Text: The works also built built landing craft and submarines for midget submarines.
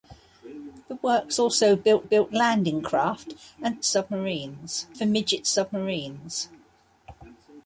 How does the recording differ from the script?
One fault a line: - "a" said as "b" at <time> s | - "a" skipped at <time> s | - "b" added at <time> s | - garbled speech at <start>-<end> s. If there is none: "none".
none